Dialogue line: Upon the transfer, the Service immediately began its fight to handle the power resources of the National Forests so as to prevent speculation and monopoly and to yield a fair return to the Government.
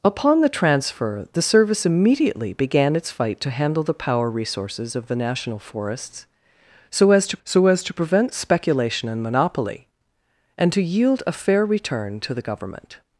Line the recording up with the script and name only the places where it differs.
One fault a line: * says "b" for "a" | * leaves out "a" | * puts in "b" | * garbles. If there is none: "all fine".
* puts in "so as to"